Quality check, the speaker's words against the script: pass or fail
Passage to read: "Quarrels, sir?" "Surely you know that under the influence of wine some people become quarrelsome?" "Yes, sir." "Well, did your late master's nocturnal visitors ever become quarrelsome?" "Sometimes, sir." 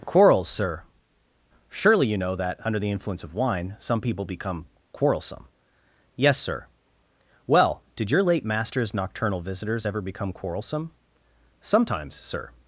pass